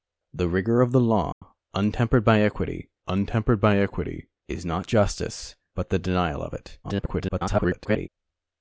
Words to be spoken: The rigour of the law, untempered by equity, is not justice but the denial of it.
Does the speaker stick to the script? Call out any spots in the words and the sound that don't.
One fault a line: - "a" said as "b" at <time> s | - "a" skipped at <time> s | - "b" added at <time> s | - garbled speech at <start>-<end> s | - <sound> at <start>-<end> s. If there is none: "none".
- dropout at 1.3-1.4 s
- "untempered by equity" added at 3.1 s
- garbled speech at 6.8-8.1 s